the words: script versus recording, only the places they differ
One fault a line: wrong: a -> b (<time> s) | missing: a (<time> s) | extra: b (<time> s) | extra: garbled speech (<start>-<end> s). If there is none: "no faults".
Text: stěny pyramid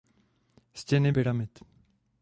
no faults